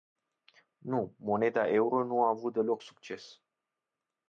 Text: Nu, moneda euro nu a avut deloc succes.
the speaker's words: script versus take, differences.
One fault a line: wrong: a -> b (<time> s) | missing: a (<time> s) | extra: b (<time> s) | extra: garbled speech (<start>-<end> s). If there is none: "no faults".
no faults